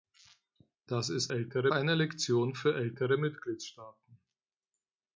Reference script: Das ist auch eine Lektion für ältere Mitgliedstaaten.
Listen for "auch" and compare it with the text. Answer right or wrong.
wrong